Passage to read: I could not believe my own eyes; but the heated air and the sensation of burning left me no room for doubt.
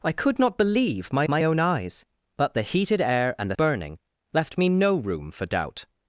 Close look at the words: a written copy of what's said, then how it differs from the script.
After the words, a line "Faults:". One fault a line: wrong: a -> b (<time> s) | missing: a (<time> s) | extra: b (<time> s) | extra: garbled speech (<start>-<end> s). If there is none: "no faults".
I could not believe my my own eyes; but the heated air and the burning left me no room for doubt.
Faults:
extra: my (1.3 s)
missing: sensation of (3.5 s)